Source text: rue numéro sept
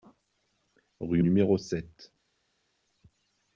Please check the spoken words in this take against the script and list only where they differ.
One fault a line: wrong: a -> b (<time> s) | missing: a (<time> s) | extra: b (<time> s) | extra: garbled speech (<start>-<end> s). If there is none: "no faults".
no faults